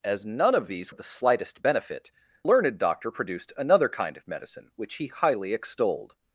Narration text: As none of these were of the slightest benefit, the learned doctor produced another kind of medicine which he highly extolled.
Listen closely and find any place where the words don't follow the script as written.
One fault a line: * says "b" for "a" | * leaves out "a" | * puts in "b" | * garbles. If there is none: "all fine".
* leaves out "were"
* leaves out "the"